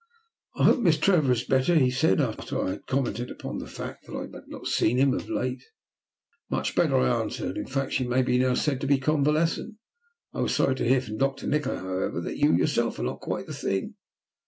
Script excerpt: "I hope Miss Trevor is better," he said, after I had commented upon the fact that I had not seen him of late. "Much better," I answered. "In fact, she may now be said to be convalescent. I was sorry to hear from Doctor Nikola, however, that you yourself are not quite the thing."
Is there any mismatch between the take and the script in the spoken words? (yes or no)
no